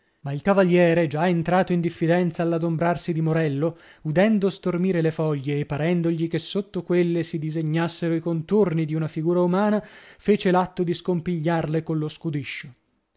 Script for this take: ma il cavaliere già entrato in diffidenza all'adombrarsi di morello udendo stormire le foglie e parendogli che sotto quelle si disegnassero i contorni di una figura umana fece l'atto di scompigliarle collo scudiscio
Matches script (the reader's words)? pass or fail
pass